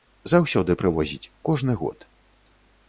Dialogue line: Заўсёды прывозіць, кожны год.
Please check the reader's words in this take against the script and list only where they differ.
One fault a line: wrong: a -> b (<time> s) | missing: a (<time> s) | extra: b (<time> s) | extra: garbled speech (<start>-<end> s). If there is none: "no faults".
no faults